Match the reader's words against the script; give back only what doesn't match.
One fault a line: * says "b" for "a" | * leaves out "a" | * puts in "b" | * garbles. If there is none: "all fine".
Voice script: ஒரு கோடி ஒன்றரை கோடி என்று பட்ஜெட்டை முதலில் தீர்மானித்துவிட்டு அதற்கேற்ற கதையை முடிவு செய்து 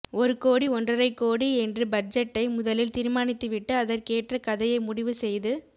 all fine